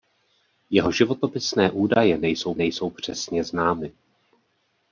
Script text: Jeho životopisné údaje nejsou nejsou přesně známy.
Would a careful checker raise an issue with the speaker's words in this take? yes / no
no